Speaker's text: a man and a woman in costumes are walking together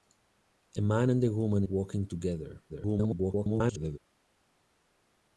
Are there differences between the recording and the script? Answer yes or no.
yes